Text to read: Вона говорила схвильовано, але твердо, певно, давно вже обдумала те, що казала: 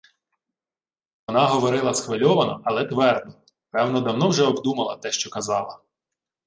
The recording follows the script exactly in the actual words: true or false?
true